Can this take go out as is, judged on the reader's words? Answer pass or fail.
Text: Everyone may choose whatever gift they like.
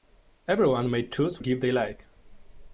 fail